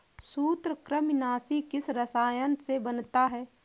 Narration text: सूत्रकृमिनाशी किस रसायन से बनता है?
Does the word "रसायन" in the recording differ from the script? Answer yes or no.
no